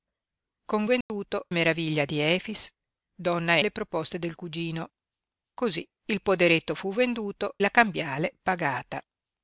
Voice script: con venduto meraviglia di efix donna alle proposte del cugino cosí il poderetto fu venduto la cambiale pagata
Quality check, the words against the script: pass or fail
pass